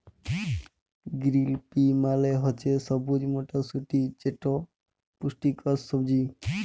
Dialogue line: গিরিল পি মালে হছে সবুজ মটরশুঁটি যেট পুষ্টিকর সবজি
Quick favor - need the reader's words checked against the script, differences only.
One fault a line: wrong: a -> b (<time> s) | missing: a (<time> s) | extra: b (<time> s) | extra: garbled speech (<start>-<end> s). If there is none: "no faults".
no faults